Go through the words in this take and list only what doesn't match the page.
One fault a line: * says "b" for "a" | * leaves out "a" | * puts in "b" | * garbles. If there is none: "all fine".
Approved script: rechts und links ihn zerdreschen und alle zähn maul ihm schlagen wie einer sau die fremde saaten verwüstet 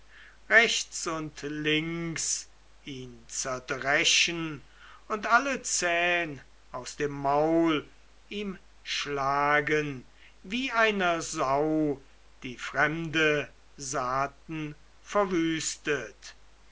* puts in "aus dem"